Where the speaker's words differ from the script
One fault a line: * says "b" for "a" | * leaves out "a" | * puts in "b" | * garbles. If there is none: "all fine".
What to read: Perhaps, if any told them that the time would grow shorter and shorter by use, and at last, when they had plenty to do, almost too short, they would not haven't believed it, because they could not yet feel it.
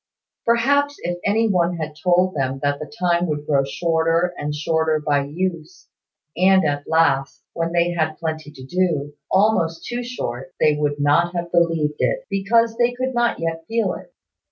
* puts in "one had"
* says "have" for "haven't"